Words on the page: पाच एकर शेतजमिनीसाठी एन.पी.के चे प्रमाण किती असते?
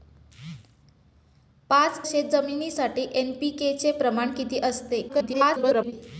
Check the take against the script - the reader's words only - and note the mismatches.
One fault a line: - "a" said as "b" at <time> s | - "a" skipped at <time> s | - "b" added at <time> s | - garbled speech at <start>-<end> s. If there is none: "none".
- "एकर" skipped at 2.1 s
- garbled speech at 5.1-5.9 s